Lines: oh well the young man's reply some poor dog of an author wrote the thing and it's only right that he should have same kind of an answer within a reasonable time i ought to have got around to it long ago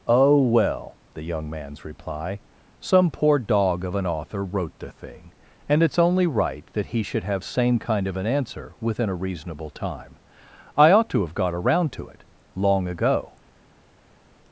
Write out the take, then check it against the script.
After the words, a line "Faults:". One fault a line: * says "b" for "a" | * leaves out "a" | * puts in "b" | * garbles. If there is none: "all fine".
oh well the young man's reply some poor dog of an author wrote the thing and it's only right that he should have same kind of an answer within a reasonable time i ought to have got around to it long ago
Faults:
all fine